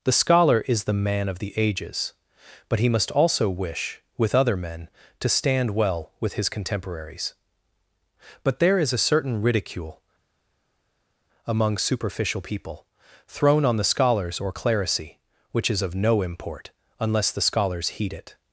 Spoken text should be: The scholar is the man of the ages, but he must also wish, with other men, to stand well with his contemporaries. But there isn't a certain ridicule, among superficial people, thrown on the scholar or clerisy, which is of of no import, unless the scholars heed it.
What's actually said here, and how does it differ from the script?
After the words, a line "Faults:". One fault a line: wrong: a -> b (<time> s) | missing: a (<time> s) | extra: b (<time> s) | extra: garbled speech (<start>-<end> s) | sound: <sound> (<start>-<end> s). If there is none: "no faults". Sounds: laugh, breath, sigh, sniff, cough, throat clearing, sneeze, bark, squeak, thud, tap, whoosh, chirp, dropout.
The scholar is the man of the ages, but he must also wish, with other men, to stand well with his contemporaries. But there is a certain ridicule, among superficial people, thrown on the scholars or clerisy, which is of no import, unless the scholars heed it.
Faults:
wrong: isn't -> is (8.8 s)
wrong: scholar -> scholars (13.8 s)
missing: of (15.9 s)